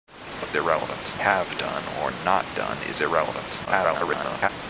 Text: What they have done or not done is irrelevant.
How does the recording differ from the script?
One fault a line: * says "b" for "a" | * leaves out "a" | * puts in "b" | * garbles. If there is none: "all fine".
* says "irrelevant" for "they"
* garbles